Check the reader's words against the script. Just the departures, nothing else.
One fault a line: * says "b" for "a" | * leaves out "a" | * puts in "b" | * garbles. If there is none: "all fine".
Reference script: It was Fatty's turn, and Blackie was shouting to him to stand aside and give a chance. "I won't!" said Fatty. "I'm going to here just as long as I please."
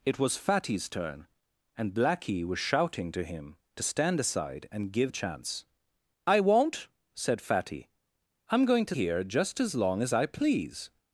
all fine